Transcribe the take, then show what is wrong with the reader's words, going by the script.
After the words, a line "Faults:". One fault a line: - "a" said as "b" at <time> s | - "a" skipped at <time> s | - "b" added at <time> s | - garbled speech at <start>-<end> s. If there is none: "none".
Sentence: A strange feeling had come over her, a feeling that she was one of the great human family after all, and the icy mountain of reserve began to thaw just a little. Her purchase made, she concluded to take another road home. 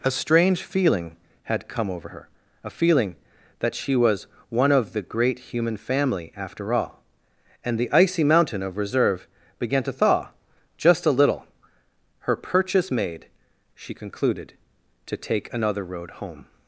A strange feeling had come over her, a feeling that she was one of the great human family after all, and the icy mountain of reserve began to thaw just a little. Her purchase made, she concluded to take another road home.
Faults:
none